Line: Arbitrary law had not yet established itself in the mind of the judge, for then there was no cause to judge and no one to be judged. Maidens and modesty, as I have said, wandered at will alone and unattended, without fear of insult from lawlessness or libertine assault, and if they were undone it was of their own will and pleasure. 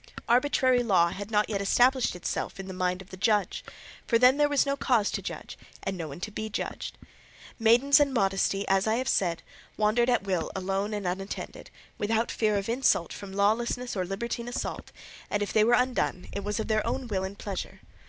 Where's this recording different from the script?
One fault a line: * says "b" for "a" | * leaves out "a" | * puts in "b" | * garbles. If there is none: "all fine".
all fine